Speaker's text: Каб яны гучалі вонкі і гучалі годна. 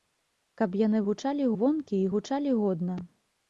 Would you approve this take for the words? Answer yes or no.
yes